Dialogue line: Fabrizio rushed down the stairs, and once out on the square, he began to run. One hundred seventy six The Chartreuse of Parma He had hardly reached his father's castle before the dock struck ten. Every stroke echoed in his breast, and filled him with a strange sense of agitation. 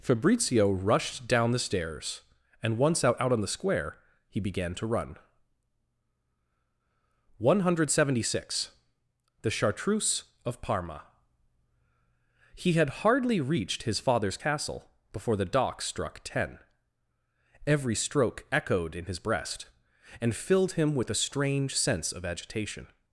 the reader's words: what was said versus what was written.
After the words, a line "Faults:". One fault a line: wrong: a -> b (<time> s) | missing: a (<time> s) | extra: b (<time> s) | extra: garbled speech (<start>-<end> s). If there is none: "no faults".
Fabrizio rushed down the stairs, and once out out on the square, he began to run. One hundred seventy six The Chartreuse of Parma He had hardly reached his father's castle before the dock struck ten. Every stroke echoed in his breast, and filled him with a strange sense of agitation.
Faults:
extra: out (3.2 s)